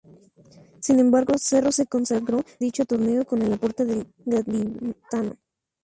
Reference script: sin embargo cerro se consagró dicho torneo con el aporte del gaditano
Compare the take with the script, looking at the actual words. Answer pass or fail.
pass